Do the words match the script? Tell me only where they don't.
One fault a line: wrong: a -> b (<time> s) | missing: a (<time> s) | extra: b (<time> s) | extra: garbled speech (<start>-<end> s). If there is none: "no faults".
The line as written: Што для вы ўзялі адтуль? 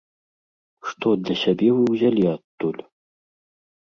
extra: сябе (1.4 s)